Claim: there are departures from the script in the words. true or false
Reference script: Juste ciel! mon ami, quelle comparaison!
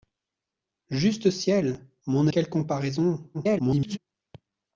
true